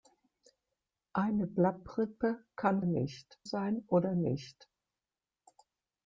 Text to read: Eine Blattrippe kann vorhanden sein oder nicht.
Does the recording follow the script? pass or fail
fail